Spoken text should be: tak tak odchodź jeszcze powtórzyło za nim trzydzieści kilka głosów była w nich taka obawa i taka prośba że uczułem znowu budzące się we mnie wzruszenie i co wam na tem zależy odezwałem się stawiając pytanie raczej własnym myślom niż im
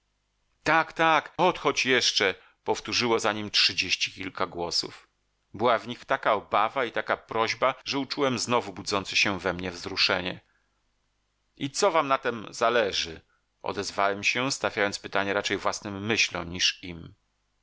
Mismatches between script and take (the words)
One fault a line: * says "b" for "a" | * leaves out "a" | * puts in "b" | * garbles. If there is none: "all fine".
all fine